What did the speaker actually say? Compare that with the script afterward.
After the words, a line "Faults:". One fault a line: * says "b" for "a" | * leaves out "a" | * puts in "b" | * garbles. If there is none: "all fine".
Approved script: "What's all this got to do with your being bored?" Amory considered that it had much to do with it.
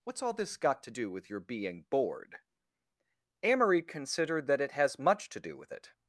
"What's all this got to do with your being bored?" Amory considered that it has much to do with it.
Faults:
* says "has" for "had"